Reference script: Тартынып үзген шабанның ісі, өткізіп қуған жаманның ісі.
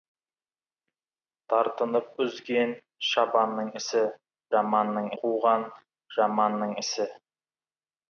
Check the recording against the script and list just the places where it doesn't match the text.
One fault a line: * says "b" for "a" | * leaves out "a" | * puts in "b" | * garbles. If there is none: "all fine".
* says "жаманның" for "өткізіп"